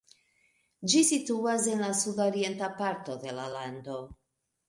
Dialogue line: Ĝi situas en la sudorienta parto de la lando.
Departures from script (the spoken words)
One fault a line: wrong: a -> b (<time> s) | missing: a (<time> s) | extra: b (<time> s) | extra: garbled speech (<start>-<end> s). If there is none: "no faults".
no faults